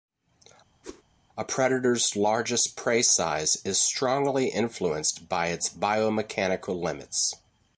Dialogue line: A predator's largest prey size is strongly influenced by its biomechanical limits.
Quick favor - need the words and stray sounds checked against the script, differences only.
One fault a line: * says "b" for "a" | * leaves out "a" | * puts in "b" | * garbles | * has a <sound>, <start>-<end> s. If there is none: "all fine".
* has a whoosh, 0.8-1.0 s